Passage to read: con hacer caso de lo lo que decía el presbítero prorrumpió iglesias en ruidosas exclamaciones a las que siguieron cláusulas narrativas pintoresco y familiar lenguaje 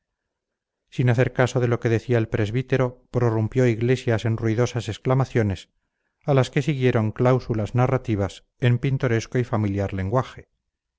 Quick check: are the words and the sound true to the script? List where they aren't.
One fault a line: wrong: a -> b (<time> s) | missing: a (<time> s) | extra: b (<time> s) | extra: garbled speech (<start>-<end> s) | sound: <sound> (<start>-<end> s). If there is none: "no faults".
wrong: con -> sin (0.9 s)
missing: lo (1.8 s)
extra: en (8.6 s)